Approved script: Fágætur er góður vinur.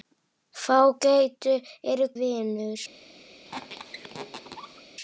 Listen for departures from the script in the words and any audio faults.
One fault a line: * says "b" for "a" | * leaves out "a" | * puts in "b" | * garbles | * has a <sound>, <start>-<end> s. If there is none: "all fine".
* leaves out "góður"
* has a squeak, 3.4-4.8 s